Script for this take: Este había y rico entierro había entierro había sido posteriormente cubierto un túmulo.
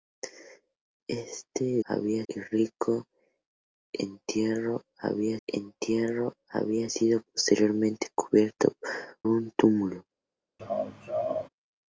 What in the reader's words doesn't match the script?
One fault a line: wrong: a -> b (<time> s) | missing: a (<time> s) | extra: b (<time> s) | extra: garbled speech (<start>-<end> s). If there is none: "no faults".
no faults